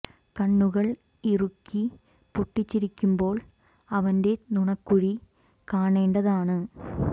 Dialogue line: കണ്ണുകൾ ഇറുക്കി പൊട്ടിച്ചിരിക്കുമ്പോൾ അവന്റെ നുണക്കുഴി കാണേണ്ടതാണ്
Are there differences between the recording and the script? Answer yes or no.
no